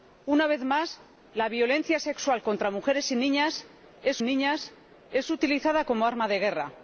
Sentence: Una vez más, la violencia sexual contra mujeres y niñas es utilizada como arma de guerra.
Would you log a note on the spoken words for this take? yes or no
yes